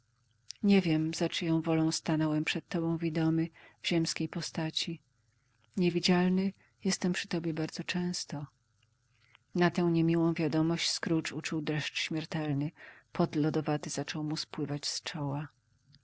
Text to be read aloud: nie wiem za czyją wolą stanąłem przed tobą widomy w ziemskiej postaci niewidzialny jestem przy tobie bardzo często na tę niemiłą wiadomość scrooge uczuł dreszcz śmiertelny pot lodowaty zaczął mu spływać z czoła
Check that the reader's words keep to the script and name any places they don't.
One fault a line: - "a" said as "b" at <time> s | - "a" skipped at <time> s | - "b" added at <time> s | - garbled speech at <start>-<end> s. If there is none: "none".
none